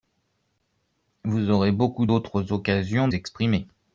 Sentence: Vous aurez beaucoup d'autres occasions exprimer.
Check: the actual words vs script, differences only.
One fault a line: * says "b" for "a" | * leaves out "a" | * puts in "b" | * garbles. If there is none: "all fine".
all fine